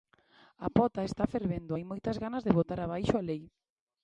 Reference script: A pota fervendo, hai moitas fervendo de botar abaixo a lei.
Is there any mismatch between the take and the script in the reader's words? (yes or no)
yes